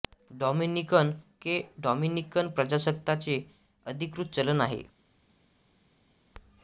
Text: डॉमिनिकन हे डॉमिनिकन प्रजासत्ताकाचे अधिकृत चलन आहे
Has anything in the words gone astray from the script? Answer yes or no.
no